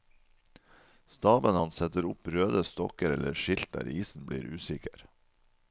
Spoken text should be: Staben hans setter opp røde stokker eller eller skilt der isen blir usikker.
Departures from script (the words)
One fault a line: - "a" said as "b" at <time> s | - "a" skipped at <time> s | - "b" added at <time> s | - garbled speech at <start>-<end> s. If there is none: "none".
- "eller" skipped at 3.4 s